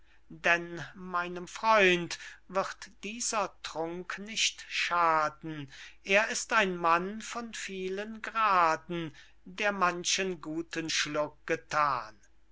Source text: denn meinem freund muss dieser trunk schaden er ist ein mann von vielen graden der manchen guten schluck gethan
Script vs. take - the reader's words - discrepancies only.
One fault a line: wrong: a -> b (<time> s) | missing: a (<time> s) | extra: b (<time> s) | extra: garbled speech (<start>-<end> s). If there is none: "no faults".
wrong: muss -> wird (2.5 s)
extra: nicht (4.2 s)